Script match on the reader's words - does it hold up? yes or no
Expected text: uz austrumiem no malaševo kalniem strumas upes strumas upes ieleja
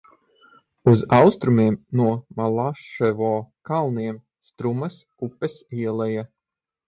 no